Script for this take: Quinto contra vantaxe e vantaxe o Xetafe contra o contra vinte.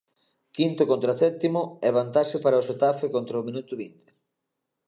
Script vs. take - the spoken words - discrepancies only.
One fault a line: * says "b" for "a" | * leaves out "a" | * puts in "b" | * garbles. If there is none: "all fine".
* says "sétimo" for "vantaxe"
* puts in "para"
* says "minuto" for "contra"